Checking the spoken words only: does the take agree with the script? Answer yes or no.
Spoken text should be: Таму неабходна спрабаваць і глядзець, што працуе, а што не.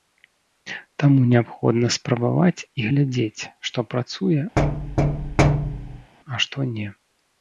yes